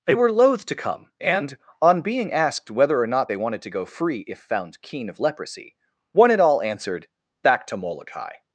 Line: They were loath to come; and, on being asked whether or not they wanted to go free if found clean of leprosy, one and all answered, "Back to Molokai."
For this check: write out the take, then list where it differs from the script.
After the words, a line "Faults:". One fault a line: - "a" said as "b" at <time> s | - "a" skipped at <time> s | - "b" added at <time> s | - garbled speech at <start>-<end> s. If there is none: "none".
They were loath to come; and, on being asked whether or not they wanted to go free if found keen of leprosy, one and all answered, "Back to Molokai."
Faults:
- "clean" said as "keen" at 4.8 s